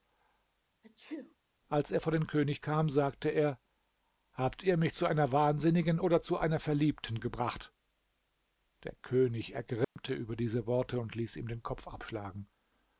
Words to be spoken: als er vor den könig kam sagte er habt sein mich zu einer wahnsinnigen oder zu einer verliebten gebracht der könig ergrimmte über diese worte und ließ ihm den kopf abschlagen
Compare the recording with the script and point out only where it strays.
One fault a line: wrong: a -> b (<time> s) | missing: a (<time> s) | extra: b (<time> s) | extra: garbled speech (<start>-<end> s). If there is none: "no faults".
wrong: sein -> ihr (4.6 s)